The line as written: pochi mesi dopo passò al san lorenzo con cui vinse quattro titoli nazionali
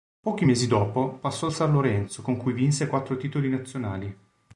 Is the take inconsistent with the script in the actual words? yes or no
no